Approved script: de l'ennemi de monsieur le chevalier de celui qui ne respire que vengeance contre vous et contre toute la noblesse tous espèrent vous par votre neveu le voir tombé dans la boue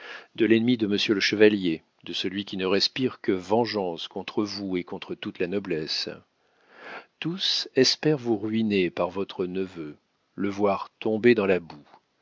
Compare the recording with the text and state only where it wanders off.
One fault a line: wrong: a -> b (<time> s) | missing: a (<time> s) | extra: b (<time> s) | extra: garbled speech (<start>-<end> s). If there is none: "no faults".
extra: ruiner (8.4 s)